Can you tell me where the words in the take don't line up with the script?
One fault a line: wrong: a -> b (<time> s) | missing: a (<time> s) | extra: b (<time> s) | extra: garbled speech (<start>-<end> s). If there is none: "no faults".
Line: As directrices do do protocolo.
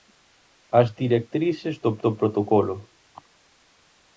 no faults